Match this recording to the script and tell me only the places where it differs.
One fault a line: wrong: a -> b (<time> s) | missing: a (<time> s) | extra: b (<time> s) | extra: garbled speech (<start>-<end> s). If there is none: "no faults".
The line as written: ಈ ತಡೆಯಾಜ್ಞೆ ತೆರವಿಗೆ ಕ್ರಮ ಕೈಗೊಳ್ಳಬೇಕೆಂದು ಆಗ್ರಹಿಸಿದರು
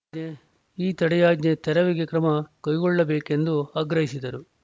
no faults